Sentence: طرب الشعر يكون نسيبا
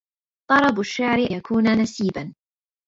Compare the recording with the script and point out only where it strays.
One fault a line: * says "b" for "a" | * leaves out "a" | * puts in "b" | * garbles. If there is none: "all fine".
all fine